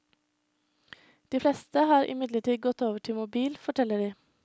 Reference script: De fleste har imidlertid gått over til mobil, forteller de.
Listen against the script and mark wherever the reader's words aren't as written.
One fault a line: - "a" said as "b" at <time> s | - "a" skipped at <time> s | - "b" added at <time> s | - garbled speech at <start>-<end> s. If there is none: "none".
none